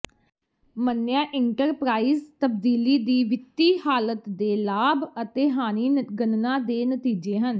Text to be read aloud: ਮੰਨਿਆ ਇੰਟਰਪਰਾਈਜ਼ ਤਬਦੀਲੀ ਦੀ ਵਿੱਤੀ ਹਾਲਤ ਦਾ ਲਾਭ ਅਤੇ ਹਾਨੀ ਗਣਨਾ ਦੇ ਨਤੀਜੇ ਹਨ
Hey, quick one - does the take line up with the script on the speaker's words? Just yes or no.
no